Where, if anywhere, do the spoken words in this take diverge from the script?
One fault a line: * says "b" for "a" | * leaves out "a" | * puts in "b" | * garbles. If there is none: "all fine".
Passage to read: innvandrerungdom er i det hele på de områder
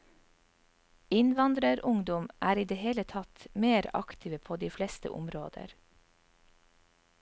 * puts in "tatt mer aktive"
* puts in "fleste"